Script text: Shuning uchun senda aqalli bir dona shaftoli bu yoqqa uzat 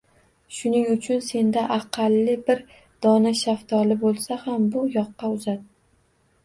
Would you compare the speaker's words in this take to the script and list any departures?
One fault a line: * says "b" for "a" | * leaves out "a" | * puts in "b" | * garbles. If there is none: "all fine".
* puts in "bo`lsa ham"